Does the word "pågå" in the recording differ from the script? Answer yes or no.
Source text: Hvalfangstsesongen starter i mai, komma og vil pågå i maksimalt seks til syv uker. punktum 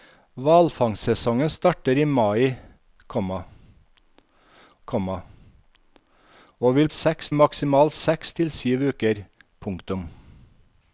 yes